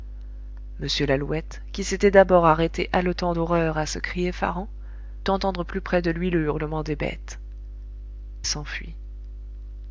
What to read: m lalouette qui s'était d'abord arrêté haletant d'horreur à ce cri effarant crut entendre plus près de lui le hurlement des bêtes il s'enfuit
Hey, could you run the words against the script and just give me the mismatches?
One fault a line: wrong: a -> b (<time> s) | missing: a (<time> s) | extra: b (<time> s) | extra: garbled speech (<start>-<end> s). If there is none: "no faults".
missing: crut (4.7 s)
missing: il (7.4 s)